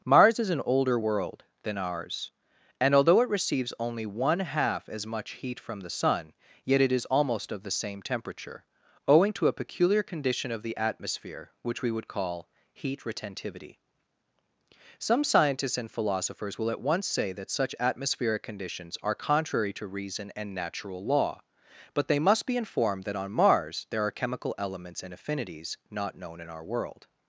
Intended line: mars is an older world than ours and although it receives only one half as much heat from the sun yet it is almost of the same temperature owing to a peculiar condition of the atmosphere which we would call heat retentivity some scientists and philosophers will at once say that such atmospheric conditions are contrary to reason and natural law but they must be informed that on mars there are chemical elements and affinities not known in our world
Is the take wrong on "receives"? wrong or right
right